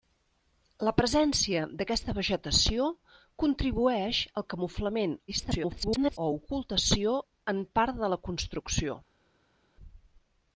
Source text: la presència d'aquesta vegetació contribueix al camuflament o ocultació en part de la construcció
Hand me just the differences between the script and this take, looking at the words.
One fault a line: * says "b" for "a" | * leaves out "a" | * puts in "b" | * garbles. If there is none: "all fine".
* garbles